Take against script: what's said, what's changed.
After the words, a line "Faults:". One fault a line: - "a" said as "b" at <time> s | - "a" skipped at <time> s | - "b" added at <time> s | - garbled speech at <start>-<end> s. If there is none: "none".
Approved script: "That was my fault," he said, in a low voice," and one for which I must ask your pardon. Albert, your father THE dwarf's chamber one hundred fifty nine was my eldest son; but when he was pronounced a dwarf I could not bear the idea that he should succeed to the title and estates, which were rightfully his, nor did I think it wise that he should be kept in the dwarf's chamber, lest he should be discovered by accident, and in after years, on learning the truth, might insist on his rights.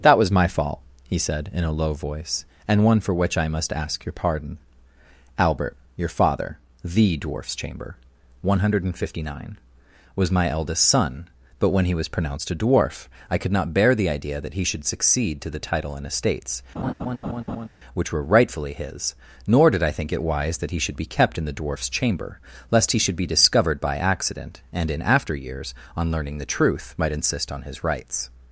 "That was my fault," he said, in a low voice," and one for which I must ask your pardon. Albert, your father THE dwarf's chamber one hundred fifty nine was my eldest son; but when he was pronounced a dwarf I could not bear the idea that he should succeed to the title and estates, which were rightfully his, nor did I think it wise that he should be kept in the dwarf's chamber, lest he should be discovered by accident, and in after years, on learning the truth, might insist on his rights.
Faults:
none